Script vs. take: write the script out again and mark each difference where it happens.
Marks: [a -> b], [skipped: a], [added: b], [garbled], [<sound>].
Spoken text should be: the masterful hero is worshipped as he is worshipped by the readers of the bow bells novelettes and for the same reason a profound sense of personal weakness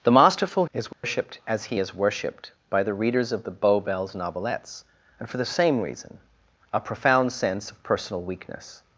the masterful [skipped: hero] is worshipped [dropout] as he is worshipped by the readers of the bow bells novelettes and for the same reason a profound sense of personal weakness